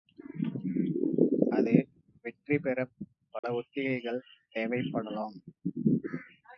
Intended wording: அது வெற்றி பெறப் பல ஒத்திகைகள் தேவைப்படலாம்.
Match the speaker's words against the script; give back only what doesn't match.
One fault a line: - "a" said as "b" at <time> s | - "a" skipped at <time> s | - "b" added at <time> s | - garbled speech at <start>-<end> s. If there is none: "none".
none